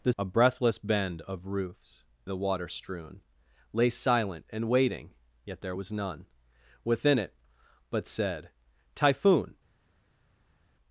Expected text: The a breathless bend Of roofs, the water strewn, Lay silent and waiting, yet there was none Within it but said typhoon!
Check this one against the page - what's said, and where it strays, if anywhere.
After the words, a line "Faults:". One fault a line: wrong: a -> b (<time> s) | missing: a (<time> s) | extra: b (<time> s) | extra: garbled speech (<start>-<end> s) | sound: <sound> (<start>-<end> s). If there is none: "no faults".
The a breathless bend Of roofs, the water strewn, Lay silent and waiting, yet there was none Within it but said typhoon!
Faults:
no faults